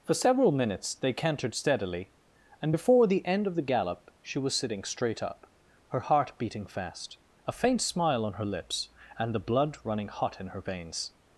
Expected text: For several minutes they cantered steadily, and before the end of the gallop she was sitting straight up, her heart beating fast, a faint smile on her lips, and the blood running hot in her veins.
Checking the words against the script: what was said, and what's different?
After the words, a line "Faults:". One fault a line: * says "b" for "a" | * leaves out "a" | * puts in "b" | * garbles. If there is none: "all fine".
For several minutes they cantered steadily, and before the end of the gallop she was sitting straight up, her heart beating fast, a faint smile on her lips, and the blood running hot in her veins.
Faults:
all fine